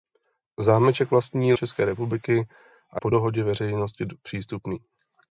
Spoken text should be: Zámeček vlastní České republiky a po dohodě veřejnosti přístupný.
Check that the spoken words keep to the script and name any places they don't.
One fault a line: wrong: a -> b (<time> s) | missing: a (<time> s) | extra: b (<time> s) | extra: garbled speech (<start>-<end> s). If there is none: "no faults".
no faults